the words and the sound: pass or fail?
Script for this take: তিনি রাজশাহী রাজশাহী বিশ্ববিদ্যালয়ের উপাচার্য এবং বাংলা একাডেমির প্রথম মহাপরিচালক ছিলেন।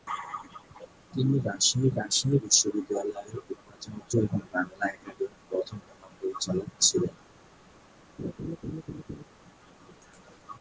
fail